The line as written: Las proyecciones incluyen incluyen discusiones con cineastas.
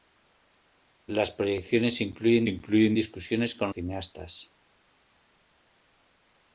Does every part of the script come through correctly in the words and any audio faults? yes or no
yes